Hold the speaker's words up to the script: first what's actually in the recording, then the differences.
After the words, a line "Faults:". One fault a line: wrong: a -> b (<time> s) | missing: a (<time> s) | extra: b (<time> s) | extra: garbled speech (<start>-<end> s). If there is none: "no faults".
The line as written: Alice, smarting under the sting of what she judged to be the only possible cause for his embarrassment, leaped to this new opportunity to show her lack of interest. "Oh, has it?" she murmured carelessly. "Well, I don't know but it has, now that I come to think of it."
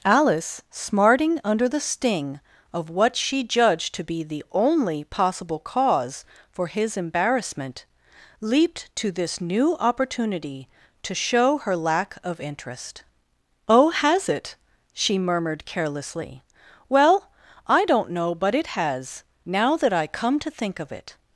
Alice, smarting under the sting of what she judged to be the only possible cause for his embarrassment, leaped to this new opportunity to show her lack of interest. "Oh, has it?" she murmured carelessly. "Well, I don't know but it has, now that I come to think of it."
Faults:
no faults